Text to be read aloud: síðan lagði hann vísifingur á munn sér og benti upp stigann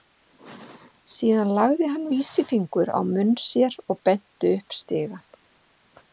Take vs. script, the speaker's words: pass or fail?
pass